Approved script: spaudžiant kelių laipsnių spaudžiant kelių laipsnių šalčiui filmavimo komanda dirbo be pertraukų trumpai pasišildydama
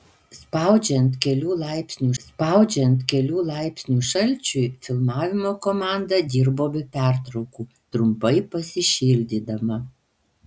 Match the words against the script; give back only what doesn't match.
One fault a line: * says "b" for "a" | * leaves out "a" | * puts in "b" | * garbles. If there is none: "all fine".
all fine